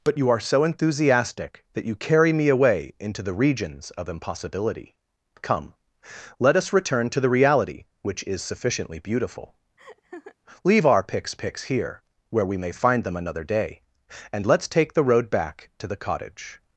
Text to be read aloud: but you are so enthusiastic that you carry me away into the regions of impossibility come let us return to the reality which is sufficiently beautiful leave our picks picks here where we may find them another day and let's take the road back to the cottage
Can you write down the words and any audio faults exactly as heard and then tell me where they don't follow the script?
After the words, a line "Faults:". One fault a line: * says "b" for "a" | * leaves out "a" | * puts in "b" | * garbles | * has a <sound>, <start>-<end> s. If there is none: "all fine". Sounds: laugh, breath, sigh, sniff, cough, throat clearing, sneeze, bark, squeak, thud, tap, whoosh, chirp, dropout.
but you are so enthusiastic that you carry me away into the regions of impossibility come let us return to the reality which is sufficiently beautiful leave our picks picks here where we may find them another day and let's take the road back to the cottage
Faults:
* has a laugh, 9.8-10.4 s